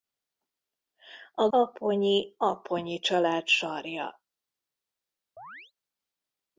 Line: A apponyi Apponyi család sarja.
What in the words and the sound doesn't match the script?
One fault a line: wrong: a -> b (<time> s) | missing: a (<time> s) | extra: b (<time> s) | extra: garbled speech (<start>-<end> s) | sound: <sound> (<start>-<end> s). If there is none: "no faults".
sound: chirp (5.4-5.7 s)